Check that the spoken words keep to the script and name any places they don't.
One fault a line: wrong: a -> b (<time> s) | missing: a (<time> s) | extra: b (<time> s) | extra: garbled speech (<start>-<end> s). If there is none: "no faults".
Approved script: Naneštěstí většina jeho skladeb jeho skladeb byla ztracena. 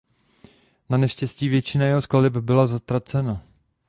missing: jeho skladeb (2.4 s)